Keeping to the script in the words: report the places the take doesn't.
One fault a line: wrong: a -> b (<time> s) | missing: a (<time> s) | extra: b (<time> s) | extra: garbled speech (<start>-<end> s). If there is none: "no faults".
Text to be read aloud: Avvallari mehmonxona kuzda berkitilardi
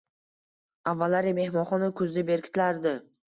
no faults